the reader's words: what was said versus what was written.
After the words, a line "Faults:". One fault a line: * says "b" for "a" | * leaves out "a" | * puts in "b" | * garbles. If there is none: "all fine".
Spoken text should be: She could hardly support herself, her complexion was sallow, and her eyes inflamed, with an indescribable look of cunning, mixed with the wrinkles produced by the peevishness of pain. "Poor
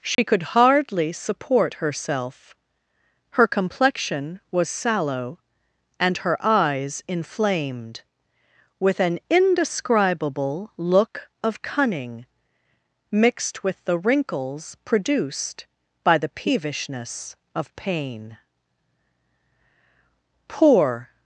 She could hardly support herself, her complexion was sallow, and her eyes inflamed, with an indescribable look of cunning, mixed with the wrinkles produced by the peevishness of pain. "Poor
Faults:
all fine